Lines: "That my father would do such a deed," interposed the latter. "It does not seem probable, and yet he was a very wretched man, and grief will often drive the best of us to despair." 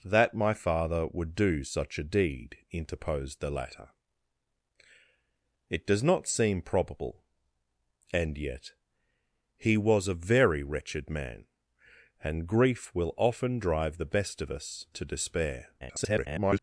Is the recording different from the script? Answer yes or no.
yes